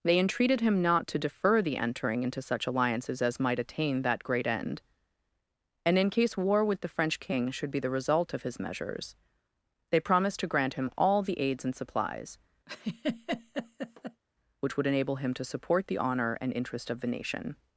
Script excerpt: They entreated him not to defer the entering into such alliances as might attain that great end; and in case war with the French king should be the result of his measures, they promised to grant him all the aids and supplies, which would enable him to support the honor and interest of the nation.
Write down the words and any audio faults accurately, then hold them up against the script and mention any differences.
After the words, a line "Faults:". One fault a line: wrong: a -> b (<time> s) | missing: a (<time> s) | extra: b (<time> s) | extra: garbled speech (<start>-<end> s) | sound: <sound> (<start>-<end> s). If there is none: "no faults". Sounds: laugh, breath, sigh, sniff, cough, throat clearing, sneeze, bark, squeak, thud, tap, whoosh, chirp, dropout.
They entreated him not to defer the entering into such alliances as might attain that great end; and in case war with the French king should be the result of his measures, they promised to grant him all the aids and supplies, which would enable him to support the honor and interest of the nation.
Faults:
sound: laugh (12.7-14.2 s)